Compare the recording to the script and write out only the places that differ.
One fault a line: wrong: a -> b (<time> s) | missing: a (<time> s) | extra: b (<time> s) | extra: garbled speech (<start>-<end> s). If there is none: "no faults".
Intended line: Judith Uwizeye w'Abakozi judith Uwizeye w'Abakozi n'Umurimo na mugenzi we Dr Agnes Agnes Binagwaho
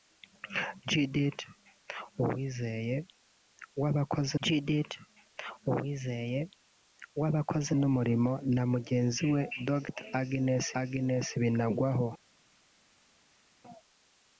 no faults